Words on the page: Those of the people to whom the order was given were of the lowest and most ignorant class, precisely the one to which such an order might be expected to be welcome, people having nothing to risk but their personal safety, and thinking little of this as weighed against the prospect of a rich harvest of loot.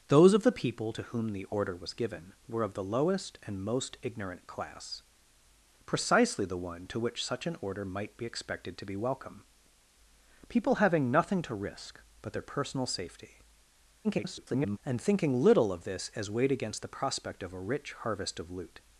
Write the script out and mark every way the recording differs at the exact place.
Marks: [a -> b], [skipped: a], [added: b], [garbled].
Those of the people to whom the order was given were of the lowest and most ignorant class, precisely the one to which such an order might be expected to be welcome, people having nothing to risk but their personal safety, [garbled] and thinking little of this as weighed against the prospect of a rich harvest of loot.